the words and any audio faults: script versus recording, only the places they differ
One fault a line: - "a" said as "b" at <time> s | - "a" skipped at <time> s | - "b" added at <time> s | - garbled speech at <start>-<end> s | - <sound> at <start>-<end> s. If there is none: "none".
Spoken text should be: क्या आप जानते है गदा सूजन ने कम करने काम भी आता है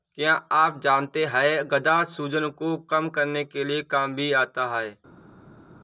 - "ने" said as "को" at 2.6 s
- "के" added at 3.5 s